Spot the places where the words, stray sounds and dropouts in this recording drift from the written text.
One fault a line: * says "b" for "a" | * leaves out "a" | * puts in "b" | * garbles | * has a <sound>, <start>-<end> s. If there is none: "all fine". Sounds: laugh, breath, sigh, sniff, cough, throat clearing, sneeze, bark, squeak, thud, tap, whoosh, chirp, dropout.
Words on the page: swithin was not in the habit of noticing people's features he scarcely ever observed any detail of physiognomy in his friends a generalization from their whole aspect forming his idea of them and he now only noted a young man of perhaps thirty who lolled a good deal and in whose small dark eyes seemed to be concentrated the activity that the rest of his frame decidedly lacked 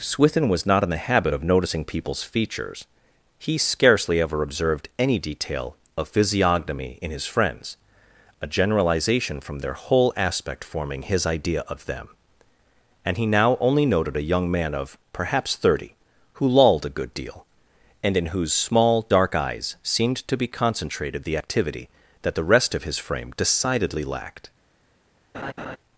* has a laugh, 25.3-25.8 s